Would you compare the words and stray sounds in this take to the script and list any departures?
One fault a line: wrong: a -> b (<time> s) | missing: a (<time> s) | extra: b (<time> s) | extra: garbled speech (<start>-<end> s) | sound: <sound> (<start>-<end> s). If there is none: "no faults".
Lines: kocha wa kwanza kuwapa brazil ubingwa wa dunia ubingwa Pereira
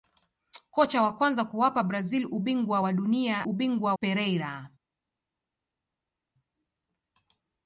no faults